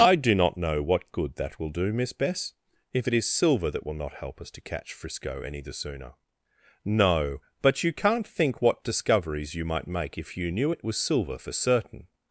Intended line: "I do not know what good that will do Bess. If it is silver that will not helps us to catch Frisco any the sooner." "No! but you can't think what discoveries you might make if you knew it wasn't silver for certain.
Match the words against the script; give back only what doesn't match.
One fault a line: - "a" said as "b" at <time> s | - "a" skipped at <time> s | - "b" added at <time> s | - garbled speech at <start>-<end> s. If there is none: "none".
- "Miss" added at 1.9 s
- "helps" said as "help" at 4.2 s
- "wasn't" said as "was" at 10.8 s